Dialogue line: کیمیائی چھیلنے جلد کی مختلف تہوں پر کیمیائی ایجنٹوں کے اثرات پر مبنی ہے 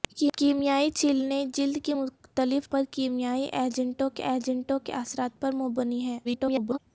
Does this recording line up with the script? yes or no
no